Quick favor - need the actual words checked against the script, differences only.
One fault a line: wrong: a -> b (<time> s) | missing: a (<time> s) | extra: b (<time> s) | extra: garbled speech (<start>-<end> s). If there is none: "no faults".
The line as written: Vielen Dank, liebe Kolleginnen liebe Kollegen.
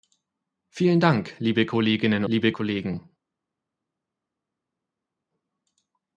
no faults